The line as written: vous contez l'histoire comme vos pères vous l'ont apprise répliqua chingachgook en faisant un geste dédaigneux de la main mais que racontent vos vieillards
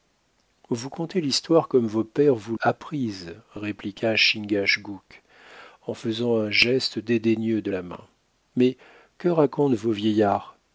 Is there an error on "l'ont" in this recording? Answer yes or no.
yes